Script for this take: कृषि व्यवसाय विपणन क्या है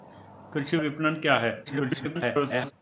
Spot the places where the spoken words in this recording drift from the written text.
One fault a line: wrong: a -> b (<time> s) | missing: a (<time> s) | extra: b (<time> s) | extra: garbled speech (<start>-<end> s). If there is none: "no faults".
missing: व्यवसाय (0.8 s)
extra: garbled speech (1.7-2.7 s)